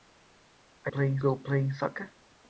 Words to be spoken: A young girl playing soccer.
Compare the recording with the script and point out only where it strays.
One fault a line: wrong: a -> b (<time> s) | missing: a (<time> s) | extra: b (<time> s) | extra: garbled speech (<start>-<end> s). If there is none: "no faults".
wrong: young -> playing (0.8 s)